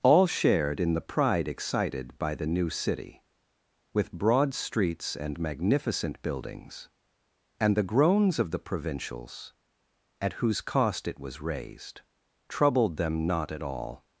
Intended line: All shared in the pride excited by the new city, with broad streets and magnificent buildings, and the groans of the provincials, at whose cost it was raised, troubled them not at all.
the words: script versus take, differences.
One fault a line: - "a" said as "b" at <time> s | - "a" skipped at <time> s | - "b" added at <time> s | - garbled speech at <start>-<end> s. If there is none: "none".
none